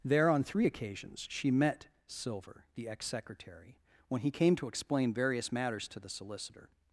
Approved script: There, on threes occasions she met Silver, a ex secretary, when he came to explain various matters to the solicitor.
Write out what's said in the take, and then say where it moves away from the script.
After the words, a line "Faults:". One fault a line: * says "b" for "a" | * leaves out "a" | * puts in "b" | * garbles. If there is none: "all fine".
There, on three occasions she met Silver, the ex secretary, when he came to explain various matters to the solicitor.
Faults:
* says "three" for "threes"
* says "the" for "a"